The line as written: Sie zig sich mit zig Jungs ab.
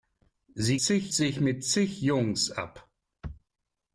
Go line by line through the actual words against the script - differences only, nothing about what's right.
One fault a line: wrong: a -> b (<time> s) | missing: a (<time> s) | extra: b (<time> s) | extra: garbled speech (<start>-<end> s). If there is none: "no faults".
no faults